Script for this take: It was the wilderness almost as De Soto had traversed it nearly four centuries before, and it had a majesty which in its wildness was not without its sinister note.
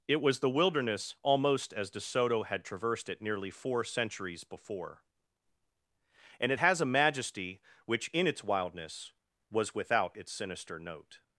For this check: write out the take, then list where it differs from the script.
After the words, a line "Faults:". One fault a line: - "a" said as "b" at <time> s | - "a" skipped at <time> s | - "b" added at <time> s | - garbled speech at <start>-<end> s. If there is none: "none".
It was the wilderness almost as De Soto had traversed it nearly four centuries before, and it has a majesty which in its wildness was without its sinister note.
Faults:
- "had" said as "has" at 6.6 s
- "not" skipped at 9.7 s